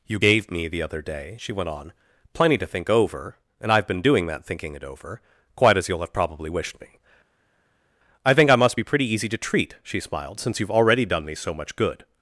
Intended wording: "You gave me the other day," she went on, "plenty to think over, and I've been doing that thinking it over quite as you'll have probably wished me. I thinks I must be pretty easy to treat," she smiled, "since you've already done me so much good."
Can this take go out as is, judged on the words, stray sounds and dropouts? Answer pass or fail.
fail